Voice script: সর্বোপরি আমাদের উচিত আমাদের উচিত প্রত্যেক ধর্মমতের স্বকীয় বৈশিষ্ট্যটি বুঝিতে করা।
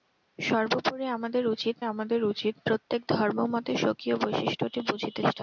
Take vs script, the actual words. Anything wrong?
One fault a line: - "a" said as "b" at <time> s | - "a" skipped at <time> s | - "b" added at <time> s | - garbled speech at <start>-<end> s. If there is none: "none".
none